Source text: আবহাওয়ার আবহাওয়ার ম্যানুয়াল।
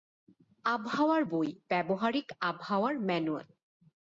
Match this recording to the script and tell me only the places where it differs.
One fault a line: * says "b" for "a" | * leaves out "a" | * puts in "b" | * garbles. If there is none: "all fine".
* puts in "বই ব্যবহারিক"